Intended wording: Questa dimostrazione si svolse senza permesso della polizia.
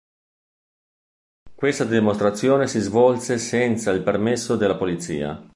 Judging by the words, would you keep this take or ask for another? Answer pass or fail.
fail